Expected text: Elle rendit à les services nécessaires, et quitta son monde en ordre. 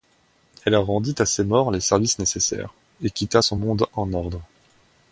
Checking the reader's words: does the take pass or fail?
fail